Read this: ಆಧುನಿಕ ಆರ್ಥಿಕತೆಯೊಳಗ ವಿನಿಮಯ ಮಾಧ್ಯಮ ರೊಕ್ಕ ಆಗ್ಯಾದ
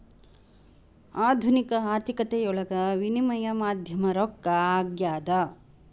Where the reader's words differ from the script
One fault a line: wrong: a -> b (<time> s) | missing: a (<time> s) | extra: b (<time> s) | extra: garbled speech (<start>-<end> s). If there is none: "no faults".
no faults